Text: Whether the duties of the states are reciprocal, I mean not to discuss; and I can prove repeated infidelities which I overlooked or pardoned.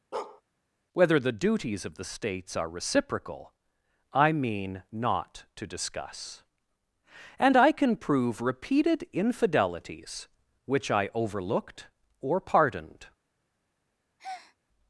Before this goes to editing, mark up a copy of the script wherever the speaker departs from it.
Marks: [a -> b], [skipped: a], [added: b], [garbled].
Whether the duties of the states are reciprocal, I mean not to discuss; and I can prove repeated infidelities which I overlooked or pardoned.